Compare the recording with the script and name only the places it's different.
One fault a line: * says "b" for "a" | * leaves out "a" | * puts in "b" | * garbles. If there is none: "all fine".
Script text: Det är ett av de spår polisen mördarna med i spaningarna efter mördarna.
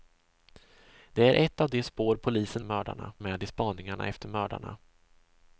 all fine